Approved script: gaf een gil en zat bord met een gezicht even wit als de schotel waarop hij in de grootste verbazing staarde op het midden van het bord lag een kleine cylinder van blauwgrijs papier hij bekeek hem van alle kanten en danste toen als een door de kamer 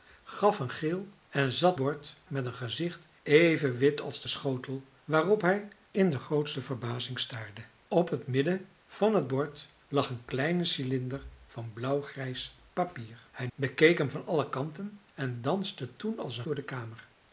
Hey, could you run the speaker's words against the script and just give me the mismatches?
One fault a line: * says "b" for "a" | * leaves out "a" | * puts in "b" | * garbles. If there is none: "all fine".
all fine